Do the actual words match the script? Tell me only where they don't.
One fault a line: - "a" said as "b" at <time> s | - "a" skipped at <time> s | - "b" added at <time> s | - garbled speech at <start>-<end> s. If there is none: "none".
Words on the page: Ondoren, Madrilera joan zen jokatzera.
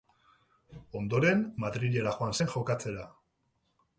none